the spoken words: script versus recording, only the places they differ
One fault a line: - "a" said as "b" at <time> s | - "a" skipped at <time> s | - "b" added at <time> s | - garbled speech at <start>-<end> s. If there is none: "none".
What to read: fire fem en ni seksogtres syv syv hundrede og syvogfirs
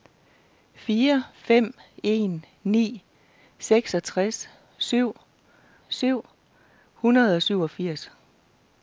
none